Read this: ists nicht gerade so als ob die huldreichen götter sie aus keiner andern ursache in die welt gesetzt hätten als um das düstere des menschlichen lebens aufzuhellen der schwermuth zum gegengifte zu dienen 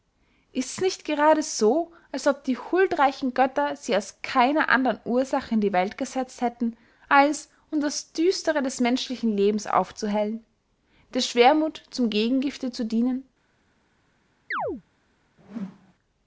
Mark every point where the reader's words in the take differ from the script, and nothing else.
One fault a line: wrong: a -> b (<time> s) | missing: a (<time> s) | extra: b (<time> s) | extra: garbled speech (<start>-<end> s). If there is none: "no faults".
no faults